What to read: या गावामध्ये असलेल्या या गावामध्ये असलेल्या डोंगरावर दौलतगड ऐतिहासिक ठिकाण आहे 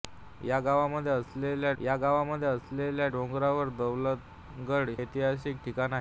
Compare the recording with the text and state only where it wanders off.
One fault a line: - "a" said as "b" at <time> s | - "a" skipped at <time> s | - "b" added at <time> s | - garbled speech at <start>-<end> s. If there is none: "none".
none